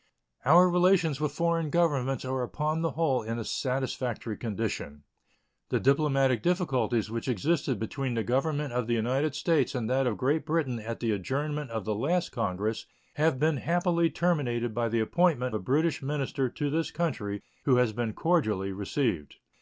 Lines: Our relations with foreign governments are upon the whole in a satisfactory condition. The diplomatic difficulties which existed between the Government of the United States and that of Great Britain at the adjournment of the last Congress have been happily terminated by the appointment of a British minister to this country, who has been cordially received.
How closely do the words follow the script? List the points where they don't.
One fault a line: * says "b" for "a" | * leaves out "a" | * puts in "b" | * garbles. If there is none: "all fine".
* leaves out "of"